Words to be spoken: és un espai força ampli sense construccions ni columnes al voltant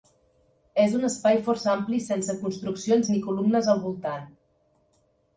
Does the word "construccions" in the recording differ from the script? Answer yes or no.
no